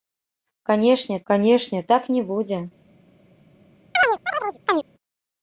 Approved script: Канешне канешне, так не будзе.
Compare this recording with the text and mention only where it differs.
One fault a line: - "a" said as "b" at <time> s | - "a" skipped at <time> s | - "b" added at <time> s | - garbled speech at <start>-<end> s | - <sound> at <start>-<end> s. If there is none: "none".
- chirp at 3.9-4.8 s